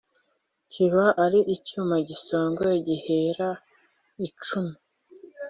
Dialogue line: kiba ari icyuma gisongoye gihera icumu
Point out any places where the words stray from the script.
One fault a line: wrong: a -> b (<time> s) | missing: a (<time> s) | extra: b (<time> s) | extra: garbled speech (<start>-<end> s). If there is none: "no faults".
no faults